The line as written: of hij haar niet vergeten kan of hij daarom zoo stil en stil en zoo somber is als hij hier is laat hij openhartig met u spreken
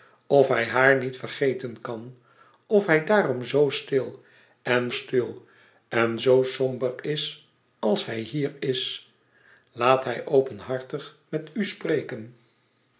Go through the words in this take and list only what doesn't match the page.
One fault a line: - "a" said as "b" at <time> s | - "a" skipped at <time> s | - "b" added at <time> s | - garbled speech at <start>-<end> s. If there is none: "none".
none